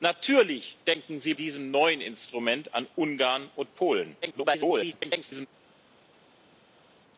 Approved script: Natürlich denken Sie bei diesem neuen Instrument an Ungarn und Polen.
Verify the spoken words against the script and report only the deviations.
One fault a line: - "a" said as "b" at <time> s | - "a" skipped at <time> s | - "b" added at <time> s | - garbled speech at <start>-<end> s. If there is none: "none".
- "bei" skipped at 1.4 s
- garbled speech at 4.2-5.5 s